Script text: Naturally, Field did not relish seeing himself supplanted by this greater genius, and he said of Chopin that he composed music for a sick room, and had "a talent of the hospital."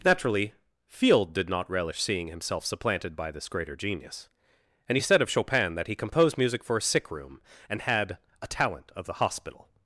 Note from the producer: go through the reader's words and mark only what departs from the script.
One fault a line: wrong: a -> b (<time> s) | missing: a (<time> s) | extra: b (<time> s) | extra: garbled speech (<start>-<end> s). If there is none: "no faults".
no faults